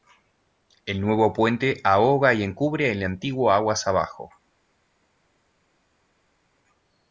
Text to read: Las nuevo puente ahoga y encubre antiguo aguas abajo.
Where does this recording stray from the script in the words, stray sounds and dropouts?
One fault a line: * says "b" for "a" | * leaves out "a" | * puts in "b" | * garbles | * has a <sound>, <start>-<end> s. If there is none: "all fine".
* says "El" for "Las"
* puts in "el"